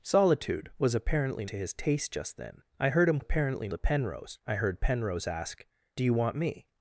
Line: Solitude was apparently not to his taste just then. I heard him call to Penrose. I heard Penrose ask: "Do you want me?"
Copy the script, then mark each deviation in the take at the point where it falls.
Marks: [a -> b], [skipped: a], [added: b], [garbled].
Solitude was apparently [skipped: not] to his taste just then. I heard him [call -> apparently] to Penrose. I heard Penrose ask: "Do you want me?"